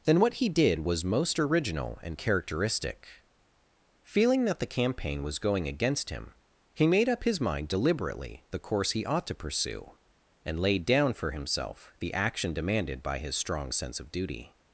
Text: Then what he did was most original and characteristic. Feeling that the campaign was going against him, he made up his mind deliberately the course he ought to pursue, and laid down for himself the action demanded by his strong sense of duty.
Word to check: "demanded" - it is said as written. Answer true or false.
true